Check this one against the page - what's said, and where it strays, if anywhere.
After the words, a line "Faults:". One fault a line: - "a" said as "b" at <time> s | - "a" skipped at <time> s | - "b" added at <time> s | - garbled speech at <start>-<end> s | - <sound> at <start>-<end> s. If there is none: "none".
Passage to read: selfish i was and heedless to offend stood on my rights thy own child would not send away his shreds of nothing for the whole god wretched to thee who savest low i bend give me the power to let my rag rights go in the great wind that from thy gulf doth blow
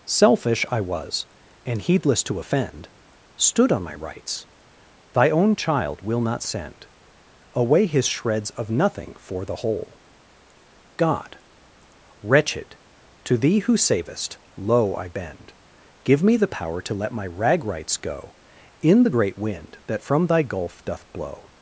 selfish i was and heedless to offend stood on my rights thy own child will not send away his shreds of nothing for the whole god wretched to thee who savest low i bend give me the power to let my rag rights go in the great wind that from thy gulf doth blow
Faults:
- "would" said as "will" at 6.0 s